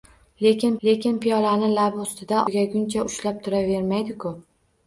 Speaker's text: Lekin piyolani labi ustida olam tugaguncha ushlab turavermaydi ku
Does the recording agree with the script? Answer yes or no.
no